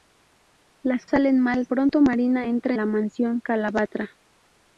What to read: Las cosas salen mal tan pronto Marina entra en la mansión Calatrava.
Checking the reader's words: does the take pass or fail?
fail